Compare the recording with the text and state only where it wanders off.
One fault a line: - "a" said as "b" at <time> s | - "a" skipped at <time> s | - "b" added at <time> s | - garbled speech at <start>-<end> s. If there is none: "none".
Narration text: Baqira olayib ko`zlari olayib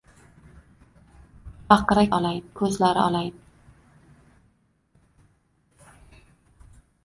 none